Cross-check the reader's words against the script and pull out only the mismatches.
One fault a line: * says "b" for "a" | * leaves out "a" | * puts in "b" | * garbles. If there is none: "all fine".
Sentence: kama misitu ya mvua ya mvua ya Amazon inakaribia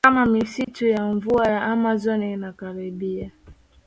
* leaves out "mvua ya"